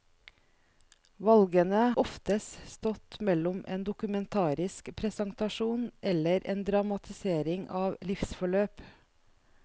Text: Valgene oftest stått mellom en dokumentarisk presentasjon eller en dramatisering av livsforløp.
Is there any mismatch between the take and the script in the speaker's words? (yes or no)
no